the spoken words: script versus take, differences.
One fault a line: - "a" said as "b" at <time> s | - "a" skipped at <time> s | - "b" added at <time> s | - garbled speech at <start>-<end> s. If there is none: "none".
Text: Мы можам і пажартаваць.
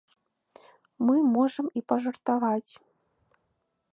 none